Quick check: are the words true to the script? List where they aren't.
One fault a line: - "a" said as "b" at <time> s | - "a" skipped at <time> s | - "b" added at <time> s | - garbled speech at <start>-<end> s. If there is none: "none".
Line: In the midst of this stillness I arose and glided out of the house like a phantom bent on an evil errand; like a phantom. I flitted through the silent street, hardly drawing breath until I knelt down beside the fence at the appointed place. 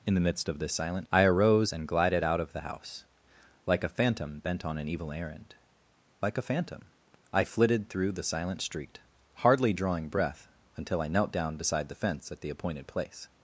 - "stillness" said as "silent" at 0.7 s